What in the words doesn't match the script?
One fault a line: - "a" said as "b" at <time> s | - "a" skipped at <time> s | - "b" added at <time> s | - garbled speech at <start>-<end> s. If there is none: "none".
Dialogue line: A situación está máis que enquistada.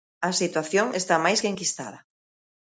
none